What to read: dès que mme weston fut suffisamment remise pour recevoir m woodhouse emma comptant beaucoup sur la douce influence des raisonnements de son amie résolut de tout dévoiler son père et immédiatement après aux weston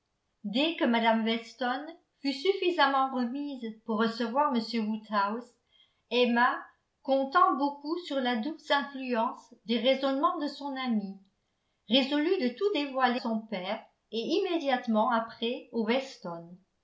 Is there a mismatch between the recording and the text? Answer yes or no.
no